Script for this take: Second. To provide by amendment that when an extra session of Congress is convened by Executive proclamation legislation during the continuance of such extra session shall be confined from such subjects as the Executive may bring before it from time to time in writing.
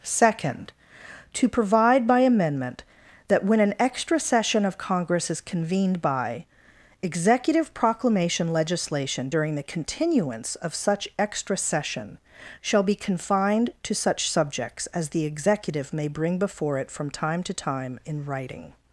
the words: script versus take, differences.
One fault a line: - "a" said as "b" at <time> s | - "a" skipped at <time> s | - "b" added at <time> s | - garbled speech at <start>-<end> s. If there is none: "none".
- "from" said as "to" at 13.8 s